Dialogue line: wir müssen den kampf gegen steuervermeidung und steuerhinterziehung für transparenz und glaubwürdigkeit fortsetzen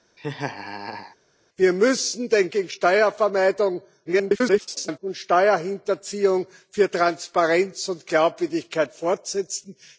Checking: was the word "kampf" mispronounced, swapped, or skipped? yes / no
yes